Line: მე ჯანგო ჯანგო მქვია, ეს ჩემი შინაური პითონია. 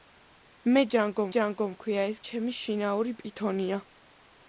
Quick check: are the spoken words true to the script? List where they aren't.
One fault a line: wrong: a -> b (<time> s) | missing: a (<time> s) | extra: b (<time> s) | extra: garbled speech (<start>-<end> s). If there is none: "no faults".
no faults